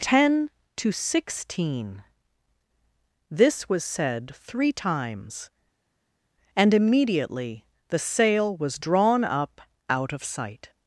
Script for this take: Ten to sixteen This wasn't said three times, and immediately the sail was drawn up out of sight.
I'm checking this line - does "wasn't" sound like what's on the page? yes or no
no